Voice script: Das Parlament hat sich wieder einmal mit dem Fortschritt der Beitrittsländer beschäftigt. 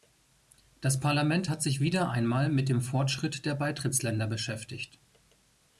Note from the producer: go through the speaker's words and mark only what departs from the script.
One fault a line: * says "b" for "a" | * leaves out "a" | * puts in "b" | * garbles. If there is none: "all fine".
all fine